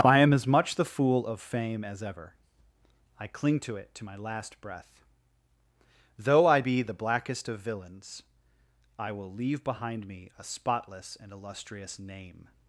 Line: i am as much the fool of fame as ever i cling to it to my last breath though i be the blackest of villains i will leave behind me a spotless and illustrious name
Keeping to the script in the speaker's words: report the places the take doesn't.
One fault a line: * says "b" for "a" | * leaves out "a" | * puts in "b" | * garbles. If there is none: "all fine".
all fine